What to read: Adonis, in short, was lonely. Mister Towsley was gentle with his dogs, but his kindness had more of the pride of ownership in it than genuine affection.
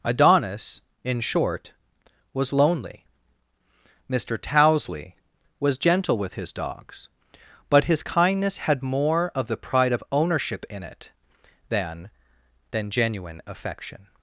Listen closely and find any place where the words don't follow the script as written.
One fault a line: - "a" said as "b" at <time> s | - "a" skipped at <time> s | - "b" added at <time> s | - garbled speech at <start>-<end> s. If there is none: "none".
- "than" added at 12.7 s